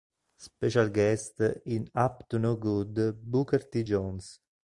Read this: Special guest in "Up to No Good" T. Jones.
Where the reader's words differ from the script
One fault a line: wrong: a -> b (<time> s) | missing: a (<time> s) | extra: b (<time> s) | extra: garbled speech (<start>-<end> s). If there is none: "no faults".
extra: Booker (3.2 s)